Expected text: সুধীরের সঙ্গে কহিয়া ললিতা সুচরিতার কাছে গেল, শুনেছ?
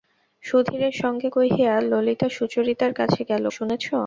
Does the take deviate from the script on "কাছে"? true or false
false